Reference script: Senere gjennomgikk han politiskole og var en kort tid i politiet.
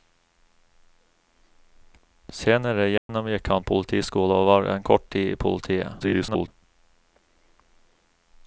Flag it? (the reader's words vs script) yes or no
yes